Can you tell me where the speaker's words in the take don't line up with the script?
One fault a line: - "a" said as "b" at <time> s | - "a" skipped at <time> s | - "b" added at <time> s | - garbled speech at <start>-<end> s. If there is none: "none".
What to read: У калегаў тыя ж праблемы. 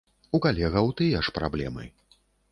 none